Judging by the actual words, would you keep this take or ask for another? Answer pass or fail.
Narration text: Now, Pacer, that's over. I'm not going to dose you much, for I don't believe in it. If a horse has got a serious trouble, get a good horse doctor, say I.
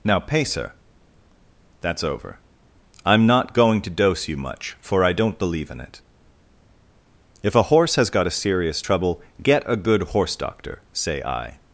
pass